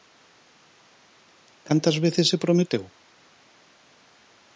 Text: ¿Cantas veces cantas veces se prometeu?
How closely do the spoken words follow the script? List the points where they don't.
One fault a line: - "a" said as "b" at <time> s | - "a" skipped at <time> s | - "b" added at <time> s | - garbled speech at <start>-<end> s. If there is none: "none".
- "cantas veces" skipped at 2.3 s